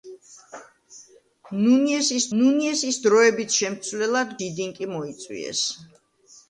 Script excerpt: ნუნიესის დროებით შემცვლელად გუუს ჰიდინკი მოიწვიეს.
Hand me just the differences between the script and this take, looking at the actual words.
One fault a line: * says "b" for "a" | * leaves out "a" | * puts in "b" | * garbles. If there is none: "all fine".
* puts in "ნუნიესის"
* leaves out "გუუს"